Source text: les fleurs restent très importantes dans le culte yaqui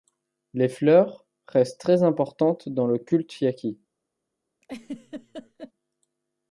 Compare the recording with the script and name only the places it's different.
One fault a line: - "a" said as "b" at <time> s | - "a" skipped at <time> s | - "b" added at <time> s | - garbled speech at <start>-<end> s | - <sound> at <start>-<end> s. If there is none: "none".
- laugh at 4.6-5.7 s